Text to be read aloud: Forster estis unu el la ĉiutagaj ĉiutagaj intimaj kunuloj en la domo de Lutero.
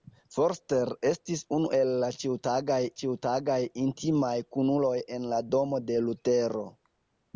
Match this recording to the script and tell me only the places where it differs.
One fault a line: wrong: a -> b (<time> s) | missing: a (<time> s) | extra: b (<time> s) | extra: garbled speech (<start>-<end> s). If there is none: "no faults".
no faults